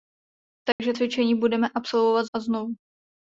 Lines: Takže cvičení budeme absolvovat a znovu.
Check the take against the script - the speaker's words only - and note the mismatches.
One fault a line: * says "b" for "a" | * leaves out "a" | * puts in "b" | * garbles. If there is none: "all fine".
all fine